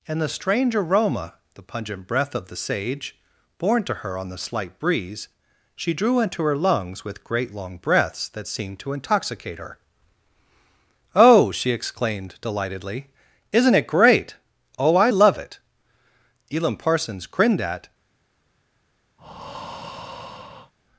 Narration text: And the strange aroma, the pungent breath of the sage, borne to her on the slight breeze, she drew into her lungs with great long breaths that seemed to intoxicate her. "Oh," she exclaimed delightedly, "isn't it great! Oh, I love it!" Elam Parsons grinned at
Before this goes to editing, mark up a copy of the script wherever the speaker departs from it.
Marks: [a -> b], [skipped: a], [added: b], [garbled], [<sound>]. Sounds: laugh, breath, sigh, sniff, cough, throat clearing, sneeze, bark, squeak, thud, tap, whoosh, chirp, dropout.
And the strange aroma, the pungent breath of the sage, borne to her on the slight breeze, she drew into her lungs with great long breaths that seemed to intoxicate her. "Oh," she exclaimed delightedly, "isn't it great! Oh, I love it!" Elam Parsons grinned at [breath]